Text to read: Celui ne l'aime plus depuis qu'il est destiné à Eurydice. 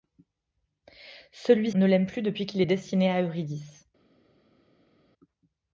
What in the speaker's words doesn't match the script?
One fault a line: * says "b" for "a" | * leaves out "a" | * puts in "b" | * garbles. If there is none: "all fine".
all fine